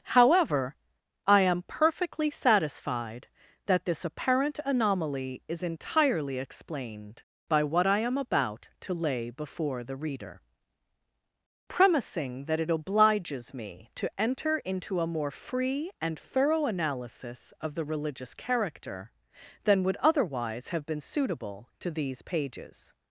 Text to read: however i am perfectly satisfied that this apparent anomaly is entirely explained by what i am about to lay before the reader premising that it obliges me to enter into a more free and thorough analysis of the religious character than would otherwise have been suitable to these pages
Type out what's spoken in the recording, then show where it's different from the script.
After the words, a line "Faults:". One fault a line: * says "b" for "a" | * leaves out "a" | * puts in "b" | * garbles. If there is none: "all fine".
however i am perfectly satisfied that this apparent anomaly is entirely explained by what i am about to lay before the reader premising that it obliges me to enter into a more free and thorough analysis of the religious character than would otherwise have been suitable to these pages
Faults:
all fine